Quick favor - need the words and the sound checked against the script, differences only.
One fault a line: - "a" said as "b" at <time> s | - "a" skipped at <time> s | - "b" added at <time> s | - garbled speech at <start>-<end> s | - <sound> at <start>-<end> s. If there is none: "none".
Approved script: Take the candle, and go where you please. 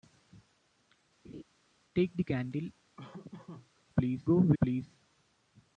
- laugh at 1.2-1.4 s
- laugh at 3.0-3.7 s
- "and" said as "please" at 3.9 s
- "you" skipped at 4.6 s